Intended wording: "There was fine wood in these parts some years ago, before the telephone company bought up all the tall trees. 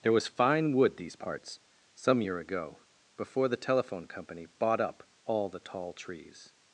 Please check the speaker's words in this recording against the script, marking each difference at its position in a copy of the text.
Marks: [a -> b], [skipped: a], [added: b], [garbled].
"There was fine wood [skipped: in] these parts some [years -> year] ago, before the telephone company bought up all the tall trees.